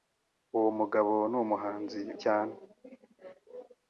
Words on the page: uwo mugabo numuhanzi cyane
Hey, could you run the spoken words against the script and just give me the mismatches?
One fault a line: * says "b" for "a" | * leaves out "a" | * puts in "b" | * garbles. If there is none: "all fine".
all fine